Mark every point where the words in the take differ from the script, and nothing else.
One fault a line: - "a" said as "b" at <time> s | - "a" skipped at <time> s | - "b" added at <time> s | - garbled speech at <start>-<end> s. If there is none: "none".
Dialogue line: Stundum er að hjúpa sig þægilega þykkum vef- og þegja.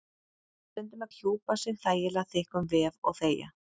none